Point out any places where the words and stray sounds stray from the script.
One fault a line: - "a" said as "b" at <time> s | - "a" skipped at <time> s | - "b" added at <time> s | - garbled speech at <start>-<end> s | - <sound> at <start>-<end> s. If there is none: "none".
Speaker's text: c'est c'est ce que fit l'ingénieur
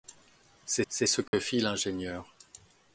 - dropout at 1.3-1.3 s